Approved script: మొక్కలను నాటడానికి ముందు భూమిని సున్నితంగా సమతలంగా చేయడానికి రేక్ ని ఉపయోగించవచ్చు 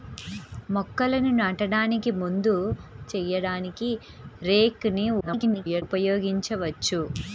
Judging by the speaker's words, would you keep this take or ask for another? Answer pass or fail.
fail